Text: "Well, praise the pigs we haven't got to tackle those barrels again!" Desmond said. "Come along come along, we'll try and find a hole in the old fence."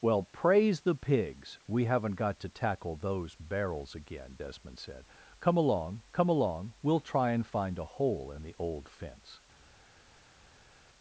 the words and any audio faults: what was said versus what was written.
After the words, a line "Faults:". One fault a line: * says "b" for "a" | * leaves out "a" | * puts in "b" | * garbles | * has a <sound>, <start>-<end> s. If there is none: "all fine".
"Well, praise the pigs we haven't got to tackle those barrels again!" Desmond said. "Come along come along, we'll try and find a hole in the old fence."
Faults:
all fine